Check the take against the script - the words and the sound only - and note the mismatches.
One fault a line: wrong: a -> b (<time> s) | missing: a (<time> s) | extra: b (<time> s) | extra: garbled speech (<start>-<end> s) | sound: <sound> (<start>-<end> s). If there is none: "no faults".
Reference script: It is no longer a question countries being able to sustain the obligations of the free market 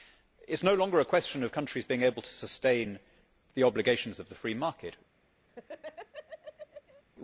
extra: of (1.4 s)
sound: laugh (5.5-7.0 s)